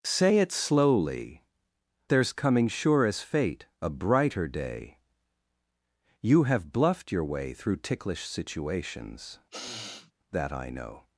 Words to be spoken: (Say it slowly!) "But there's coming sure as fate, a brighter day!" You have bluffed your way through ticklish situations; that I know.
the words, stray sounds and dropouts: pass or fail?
fail